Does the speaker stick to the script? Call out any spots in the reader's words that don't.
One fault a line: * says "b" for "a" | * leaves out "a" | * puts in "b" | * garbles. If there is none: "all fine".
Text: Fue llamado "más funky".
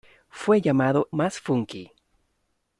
all fine